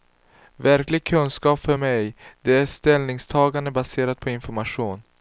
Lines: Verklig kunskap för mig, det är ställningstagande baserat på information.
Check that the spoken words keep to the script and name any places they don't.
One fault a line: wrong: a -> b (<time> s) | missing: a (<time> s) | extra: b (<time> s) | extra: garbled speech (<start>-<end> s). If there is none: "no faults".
no faults